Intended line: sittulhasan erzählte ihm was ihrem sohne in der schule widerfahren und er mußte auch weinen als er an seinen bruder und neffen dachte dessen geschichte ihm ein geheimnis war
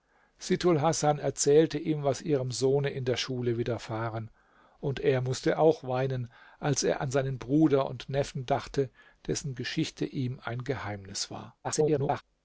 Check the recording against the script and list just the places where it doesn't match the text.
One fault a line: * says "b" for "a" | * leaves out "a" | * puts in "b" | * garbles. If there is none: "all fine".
* garbles